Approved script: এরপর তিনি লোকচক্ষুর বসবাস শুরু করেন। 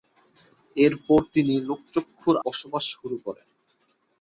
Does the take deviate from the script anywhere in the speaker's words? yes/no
no